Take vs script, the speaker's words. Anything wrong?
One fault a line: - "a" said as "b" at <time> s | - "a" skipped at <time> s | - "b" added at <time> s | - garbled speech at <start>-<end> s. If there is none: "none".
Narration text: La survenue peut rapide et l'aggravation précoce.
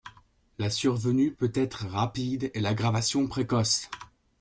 - "être" added at 1.5 s